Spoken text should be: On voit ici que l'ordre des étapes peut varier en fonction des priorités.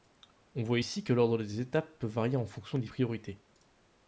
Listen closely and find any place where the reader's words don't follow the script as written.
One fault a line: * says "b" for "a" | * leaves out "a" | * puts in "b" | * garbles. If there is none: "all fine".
all fine